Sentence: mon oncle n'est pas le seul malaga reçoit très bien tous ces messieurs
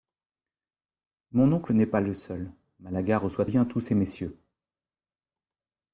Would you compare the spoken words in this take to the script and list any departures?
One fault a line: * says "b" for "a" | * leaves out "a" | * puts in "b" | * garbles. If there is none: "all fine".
* leaves out "très"